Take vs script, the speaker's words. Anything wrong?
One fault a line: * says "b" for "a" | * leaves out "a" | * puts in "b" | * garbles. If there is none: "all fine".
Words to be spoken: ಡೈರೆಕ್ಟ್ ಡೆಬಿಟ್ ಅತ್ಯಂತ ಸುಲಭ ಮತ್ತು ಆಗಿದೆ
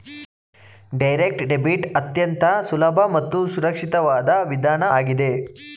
* puts in "ಸುರಕ್ಷಿತವಾದ ವಿಧಾನ"